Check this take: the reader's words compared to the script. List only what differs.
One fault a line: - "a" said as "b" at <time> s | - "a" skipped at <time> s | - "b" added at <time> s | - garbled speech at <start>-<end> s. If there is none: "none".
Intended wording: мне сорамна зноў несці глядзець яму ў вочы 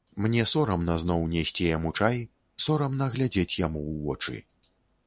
- "яму чай сорамна" added at 1.8 s